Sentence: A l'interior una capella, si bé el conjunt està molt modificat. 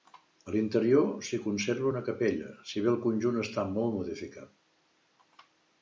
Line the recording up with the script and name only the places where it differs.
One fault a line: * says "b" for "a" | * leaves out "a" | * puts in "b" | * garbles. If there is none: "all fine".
* puts in "s'hi conserva"